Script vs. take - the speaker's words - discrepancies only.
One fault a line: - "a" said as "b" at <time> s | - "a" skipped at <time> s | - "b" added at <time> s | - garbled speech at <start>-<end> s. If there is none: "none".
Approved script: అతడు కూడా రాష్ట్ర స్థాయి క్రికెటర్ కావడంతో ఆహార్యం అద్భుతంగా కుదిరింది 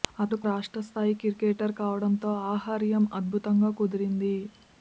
- "కూడా" skipped at 0.4 s